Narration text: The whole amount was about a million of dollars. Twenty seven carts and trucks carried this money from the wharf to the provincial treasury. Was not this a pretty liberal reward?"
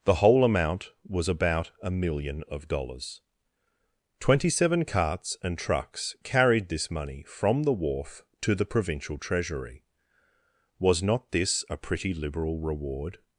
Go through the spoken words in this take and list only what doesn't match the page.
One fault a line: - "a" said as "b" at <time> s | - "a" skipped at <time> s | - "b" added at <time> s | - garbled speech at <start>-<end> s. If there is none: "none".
none